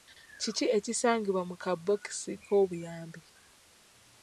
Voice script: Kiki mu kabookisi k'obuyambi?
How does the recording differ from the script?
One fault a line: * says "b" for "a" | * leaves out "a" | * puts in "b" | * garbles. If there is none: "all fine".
* puts in "ekisangibwa"